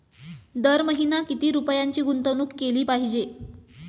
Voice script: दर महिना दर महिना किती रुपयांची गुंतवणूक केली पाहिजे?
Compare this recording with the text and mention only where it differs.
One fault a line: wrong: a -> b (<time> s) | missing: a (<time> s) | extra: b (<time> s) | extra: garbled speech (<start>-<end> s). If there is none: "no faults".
missing: दर महिना (1.2 s)